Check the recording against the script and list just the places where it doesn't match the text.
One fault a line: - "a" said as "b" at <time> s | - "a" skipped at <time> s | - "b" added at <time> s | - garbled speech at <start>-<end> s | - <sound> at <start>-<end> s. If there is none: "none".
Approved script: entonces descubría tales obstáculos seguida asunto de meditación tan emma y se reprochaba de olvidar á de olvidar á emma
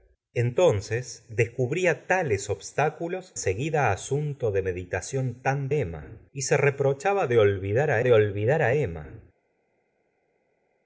none